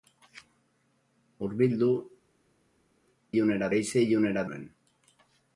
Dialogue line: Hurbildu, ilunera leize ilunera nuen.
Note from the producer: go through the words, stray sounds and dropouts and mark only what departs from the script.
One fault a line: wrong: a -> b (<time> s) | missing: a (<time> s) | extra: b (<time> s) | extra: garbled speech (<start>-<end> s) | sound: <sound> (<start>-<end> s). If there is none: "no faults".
no faults